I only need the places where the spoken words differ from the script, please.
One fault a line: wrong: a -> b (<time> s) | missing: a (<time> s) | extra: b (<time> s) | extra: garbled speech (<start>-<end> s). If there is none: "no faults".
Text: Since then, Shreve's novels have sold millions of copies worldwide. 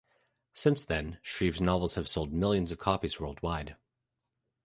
no faults